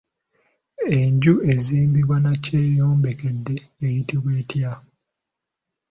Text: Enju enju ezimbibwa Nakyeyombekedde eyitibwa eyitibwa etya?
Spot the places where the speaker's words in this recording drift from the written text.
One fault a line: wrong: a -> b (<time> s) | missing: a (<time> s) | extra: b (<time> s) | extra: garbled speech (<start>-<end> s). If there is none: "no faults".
missing: enju (1.3 s)
missing: eyitibwa (4.3 s)